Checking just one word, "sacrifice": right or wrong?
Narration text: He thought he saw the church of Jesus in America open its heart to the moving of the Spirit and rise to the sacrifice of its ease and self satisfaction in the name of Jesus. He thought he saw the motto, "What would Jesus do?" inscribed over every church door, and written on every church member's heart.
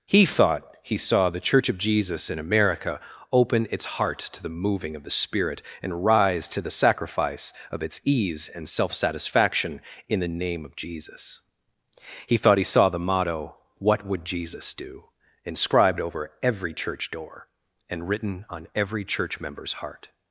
right